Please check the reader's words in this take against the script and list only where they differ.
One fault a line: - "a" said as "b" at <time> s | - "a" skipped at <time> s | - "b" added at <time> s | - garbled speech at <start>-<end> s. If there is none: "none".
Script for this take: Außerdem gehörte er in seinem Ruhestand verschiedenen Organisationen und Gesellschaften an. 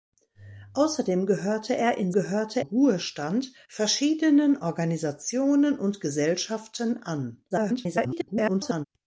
- "seinem" said as "gehörte" at 2.1 s
- garbled speech at 7.5-8.8 s